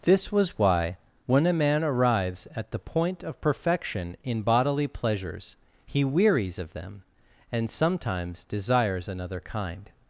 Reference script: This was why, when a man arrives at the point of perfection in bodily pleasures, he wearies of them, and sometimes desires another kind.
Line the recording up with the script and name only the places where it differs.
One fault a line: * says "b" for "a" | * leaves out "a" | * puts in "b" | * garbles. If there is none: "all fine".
all fine